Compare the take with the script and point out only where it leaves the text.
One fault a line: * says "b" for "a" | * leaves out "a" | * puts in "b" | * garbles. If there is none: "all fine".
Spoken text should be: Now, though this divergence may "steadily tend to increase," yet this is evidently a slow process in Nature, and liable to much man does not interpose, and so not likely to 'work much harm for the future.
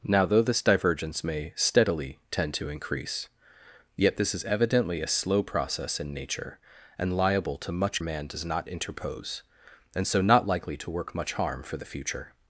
all fine